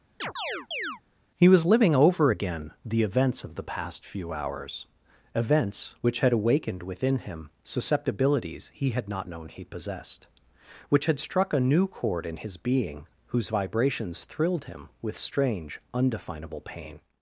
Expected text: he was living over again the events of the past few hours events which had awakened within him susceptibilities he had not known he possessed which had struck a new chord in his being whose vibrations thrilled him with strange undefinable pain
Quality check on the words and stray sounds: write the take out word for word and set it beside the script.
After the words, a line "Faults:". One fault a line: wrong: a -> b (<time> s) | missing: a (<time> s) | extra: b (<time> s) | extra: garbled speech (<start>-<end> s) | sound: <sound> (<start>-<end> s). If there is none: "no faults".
he was living over again the events of the past few hours events which had awakened within him susceptibilities he had not known he possessed which had struck a new chord in his being whose vibrations thrilled him with strange undefinable pain
Faults:
sound: chirp (0.2-1.0 s)